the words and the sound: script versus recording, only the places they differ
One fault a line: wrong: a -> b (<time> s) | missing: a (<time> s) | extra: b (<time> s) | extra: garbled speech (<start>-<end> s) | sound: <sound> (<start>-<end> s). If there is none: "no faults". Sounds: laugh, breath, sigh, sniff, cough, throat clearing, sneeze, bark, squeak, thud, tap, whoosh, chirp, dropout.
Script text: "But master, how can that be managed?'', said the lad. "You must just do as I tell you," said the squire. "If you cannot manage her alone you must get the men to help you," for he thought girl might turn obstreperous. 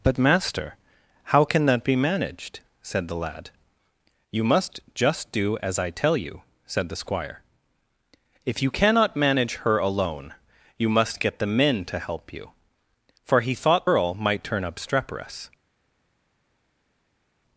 no faults